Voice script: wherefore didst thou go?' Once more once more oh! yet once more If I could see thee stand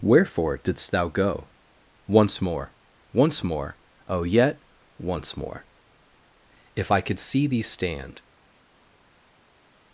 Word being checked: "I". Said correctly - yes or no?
yes